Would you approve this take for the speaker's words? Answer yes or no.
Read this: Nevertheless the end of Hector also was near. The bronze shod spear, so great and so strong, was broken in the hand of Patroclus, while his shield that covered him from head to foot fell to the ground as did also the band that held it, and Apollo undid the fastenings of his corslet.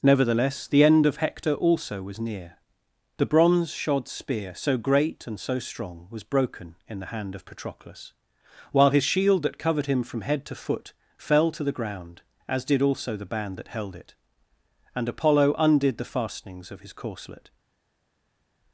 yes